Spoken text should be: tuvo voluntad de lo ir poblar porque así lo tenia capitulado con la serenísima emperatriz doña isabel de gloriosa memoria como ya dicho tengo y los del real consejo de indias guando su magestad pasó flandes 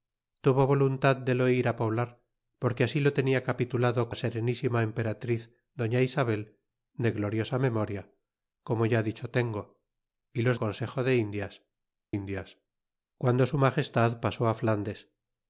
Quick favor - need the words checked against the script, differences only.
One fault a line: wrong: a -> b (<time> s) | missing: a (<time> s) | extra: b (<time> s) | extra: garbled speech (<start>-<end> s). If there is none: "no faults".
missing: con (4.1 s)
missing: del real (10.6 s)
extra: indias (12.1 s)